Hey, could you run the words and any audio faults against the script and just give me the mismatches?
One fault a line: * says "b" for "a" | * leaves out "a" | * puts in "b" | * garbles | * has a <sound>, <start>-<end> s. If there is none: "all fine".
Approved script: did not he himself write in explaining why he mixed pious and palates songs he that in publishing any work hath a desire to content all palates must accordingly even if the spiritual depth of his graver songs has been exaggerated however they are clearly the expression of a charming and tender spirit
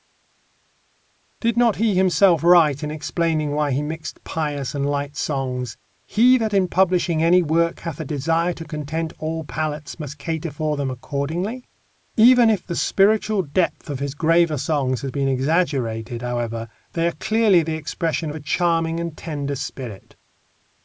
* says "light" for "palates"
* puts in "cater for them"